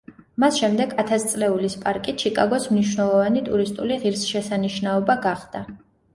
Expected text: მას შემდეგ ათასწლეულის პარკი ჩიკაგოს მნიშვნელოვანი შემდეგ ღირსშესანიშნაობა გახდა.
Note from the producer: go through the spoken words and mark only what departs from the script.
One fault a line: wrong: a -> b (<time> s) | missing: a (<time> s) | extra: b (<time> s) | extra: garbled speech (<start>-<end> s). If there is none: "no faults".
wrong: შემდეგ -> ტურისტული (3.5 s)